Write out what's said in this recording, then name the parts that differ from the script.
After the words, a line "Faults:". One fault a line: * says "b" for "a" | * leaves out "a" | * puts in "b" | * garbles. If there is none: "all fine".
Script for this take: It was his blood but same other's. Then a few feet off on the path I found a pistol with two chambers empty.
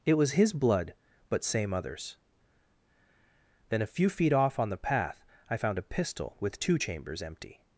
It was his blood but same other's. Then a few feet off on the path I found a pistol with two chambers empty.
Faults:
all fine